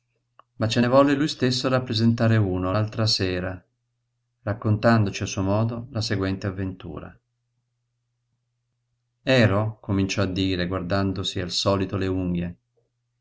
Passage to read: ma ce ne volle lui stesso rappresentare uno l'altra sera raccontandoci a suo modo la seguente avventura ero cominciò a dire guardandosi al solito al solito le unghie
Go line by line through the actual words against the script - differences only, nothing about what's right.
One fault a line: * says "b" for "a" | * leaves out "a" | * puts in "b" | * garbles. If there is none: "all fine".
* leaves out "al solito"